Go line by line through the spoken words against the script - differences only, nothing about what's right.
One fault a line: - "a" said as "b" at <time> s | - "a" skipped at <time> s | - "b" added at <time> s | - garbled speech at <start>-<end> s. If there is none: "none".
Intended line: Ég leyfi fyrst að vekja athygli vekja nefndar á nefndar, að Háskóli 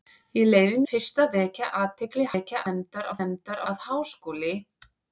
none